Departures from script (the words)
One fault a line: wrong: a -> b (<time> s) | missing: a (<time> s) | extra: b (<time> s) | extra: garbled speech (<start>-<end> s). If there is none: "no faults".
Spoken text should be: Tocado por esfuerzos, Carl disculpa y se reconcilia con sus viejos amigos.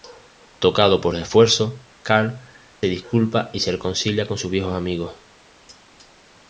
no faults